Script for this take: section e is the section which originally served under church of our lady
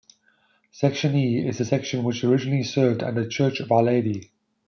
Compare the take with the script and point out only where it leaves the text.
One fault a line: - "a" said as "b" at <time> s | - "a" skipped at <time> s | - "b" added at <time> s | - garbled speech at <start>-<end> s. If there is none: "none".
none